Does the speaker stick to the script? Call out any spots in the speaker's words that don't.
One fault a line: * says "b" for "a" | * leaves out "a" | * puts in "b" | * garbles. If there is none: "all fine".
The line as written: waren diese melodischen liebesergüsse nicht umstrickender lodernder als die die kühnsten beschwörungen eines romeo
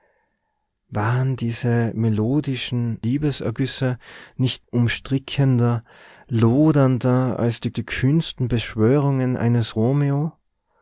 all fine